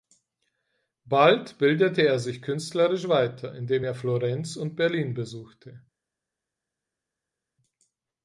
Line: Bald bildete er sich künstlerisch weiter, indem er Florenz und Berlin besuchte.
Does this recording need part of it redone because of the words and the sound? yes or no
no